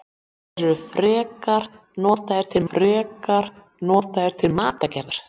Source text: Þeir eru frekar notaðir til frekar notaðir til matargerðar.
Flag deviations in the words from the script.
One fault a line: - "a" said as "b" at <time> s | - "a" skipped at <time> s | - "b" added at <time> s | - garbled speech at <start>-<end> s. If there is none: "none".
none